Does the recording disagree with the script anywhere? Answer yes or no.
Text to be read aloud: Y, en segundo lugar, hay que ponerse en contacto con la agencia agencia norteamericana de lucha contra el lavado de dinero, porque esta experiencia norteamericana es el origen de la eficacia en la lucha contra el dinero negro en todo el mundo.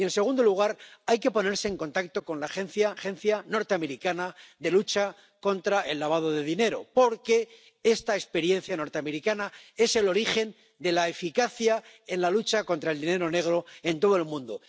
no